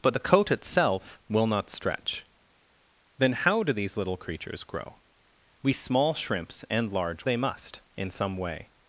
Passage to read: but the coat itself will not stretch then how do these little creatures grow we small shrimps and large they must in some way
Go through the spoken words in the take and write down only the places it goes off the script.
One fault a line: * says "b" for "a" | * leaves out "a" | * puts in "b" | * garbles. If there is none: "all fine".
all fine